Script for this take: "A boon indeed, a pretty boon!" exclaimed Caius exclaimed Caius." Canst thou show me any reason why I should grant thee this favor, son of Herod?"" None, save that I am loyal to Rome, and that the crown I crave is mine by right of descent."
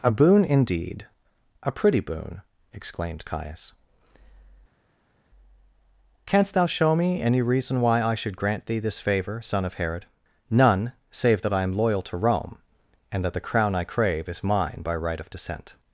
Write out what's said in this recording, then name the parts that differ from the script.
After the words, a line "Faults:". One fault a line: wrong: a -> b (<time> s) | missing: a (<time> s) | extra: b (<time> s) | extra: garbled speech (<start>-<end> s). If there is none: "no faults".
"A boon indeed, a pretty boon!" exclaimed Caius." Canst thou show me any reason why I should grant thee this favor, son of Herod?"" None, save that I am loyal to Rome, and that the crown I crave is mine by right of descent."
Faults:
missing: exclaimed Caius (3.7 s)